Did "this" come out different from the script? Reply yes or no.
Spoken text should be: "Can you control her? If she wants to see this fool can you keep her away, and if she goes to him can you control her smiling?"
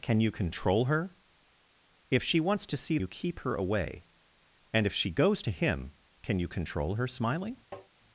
yes